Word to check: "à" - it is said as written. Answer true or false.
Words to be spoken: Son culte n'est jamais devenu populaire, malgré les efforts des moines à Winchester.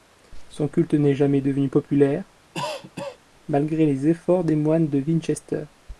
false